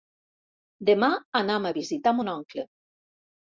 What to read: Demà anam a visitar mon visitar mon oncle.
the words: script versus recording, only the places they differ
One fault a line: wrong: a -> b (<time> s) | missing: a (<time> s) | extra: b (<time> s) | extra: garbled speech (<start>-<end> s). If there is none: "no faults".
missing: visitar mon (2.3 s)